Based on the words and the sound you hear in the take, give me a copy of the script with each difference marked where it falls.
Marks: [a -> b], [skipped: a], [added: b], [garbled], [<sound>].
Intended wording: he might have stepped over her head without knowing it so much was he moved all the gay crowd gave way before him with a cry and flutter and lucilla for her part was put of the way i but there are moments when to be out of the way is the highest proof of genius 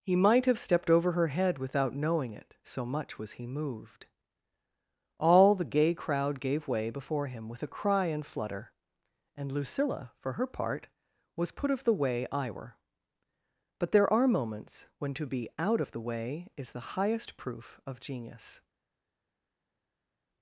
he might have stepped over her head without knowing it so much was he moved all the gay crowd gave way before him with a cry and flutter and lucilla for her part was put of the way i [added: were] but there are moments when to be out of the way is the highest proof of genius